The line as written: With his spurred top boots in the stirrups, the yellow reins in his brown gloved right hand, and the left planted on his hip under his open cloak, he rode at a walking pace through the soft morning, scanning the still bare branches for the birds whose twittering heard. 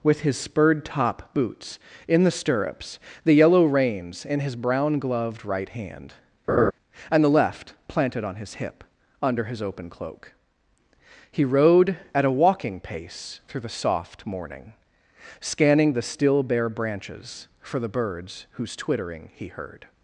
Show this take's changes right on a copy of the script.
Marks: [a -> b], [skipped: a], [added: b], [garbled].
With his spurred top boots in the stirrups, the yellow reins in his brown gloved right hand, and the left planted on his hip under his open cloak, he rode at a walking pace through the soft morning, scanning the still bare branches for the birds whose twittering [added: he] heard.